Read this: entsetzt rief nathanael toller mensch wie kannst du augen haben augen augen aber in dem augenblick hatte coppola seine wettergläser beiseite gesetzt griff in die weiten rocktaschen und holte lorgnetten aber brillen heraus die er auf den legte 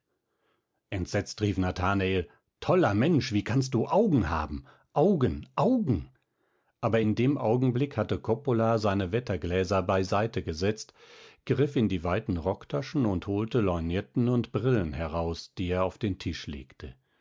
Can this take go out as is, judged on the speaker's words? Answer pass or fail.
fail